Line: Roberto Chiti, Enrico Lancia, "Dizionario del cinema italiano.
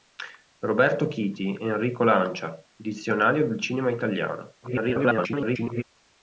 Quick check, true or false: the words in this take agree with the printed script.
false